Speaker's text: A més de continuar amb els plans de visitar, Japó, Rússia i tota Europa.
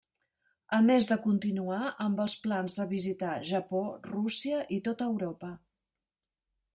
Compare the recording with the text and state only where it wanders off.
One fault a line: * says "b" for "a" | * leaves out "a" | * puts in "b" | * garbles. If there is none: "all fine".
all fine